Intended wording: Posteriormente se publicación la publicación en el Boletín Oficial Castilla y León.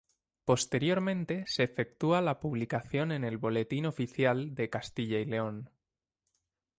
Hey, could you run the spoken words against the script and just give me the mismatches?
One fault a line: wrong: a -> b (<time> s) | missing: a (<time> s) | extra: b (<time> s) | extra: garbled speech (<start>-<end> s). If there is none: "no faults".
wrong: publicación -> efectúa (1.6 s)
extra: de (4.5 s)